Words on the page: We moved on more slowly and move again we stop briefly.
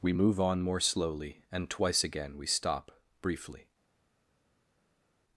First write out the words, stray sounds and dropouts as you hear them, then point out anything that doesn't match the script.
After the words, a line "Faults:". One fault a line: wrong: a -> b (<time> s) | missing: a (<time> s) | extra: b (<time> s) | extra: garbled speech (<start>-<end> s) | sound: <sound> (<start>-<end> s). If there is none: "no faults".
We move on more slowly and twice again we stop briefly.
Faults:
wrong: moved -> move (0.1 s)
wrong: move -> twice (1.7 s)